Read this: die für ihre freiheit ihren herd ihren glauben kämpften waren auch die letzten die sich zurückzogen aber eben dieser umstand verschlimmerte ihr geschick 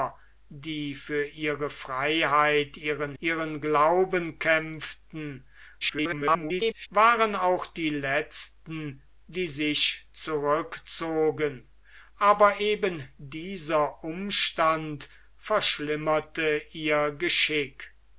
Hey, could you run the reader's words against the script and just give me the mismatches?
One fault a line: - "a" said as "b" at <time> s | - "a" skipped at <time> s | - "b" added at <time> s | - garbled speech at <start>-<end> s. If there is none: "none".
- "herd" skipped at 3.1 s
- garbled speech at 5.8-6.9 s